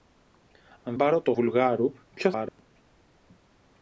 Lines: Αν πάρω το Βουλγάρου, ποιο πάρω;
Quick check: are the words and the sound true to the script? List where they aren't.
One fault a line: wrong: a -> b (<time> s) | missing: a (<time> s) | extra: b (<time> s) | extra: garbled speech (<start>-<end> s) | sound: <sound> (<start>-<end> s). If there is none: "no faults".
sound: dropout (2.5-2.6 s)